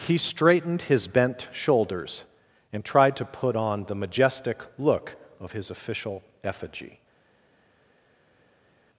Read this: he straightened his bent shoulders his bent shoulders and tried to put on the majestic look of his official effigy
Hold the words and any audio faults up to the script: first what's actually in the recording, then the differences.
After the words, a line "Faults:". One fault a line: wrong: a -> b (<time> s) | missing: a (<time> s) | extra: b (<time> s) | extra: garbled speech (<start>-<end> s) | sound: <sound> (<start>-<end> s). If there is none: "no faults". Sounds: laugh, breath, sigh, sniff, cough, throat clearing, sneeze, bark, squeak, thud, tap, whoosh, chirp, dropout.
he straightened his bent shoulders and tried to put on the majestic look of his official effigy
Faults:
missing: his bent shoulders (2.2 s)